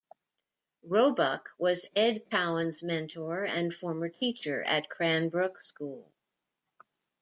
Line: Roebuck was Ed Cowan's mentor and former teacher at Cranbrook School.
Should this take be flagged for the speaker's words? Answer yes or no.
no